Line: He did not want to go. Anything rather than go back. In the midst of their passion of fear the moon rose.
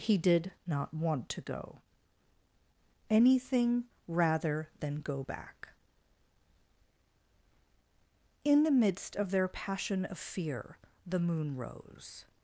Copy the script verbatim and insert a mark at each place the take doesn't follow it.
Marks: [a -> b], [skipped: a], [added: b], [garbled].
He did not want to go. Anything rather than go back. In the midst of their passion of fear the moon rose.